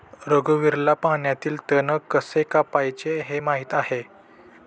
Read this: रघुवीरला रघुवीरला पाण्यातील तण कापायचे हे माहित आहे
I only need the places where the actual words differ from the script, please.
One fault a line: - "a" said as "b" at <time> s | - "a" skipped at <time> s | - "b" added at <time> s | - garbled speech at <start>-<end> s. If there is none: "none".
- "रघुवीरला" skipped at 0.9 s
- "कसे" added at 2.1 s